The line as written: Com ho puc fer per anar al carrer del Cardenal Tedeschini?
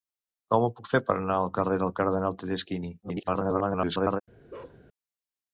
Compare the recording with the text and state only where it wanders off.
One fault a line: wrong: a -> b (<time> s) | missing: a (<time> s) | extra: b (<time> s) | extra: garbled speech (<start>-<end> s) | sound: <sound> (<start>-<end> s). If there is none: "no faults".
extra: garbled speech (3.0-4.2 s)
sound: bark (4.5-4.8 s)